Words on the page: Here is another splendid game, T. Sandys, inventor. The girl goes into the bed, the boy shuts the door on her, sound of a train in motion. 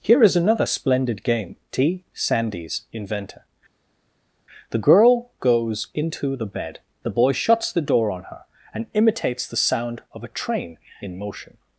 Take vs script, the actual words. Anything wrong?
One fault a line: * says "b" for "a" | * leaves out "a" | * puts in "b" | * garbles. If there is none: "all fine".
* puts in "and imitates the"